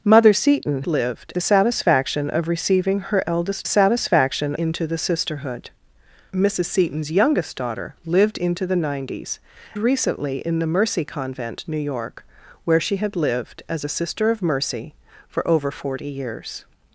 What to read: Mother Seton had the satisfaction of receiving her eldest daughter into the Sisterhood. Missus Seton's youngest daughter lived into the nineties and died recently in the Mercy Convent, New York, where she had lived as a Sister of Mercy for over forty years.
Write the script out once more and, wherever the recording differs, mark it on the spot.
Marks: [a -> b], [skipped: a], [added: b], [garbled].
Mother Seton [had -> lived] the satisfaction of receiving her eldest [daughter -> satisfaction] into the Sisterhood. Missus Seton's youngest daughter lived into the nineties [skipped: and died] recently in the Mercy Convent, New York, where she had lived as a Sister of Mercy for over forty years.